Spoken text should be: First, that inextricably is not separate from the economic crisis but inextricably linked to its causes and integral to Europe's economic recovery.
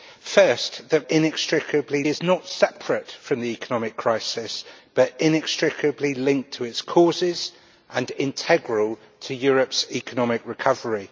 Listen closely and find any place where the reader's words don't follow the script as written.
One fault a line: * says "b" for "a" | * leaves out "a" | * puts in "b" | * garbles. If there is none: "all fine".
all fine